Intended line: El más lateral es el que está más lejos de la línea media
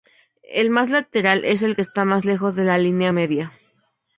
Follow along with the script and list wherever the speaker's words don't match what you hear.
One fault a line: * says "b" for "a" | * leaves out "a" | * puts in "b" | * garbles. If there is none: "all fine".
all fine